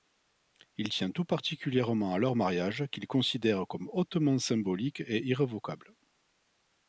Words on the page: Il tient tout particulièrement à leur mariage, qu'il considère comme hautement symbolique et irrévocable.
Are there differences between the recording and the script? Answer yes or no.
no